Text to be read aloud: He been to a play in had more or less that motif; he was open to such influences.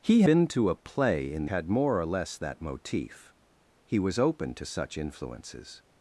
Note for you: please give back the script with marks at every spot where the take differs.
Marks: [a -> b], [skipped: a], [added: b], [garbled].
He been to a play in had more or less that motif; he was open to such influences.